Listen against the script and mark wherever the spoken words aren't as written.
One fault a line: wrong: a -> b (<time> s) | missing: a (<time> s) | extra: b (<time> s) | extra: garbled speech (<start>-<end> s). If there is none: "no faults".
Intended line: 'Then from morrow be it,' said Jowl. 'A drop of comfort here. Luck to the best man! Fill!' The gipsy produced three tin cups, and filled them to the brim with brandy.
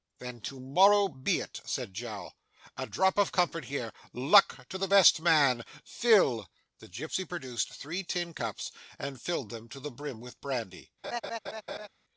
wrong: from -> to (0.4 s)